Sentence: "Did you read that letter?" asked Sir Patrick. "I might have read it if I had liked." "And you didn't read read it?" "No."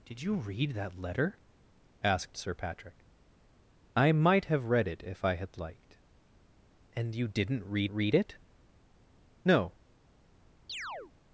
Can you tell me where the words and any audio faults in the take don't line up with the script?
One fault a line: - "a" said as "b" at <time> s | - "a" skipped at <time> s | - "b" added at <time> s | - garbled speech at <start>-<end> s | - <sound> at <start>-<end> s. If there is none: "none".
- chirp at 10.7-11.1 s